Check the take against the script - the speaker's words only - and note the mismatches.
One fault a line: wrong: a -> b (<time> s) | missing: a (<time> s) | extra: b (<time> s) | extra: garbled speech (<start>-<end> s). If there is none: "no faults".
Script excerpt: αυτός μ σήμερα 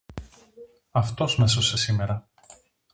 extra: έσωσε (1.4 s)